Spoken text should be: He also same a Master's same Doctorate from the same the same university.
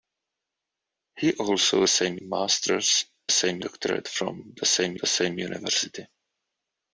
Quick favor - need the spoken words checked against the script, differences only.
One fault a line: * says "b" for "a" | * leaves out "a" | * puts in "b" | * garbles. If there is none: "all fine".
all fine